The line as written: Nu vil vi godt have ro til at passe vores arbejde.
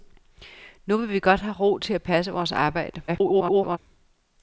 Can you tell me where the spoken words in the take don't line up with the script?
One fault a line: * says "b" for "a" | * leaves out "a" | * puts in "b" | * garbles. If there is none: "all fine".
* garbles